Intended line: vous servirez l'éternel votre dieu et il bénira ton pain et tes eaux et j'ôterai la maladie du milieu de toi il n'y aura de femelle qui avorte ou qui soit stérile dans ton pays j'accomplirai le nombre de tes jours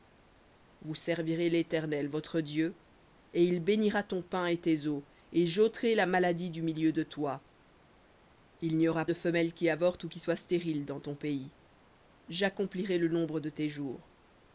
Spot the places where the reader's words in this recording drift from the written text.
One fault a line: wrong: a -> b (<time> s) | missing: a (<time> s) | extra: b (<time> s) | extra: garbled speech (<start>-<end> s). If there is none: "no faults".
no faults